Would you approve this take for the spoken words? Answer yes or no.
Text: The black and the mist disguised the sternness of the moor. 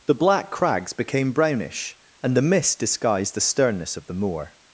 no